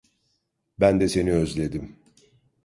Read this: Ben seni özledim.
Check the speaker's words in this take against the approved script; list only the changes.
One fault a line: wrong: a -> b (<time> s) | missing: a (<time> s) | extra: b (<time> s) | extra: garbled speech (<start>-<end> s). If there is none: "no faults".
extra: de (1.0 s)